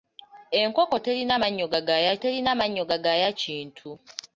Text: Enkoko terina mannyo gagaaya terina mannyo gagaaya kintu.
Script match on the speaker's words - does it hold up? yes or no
yes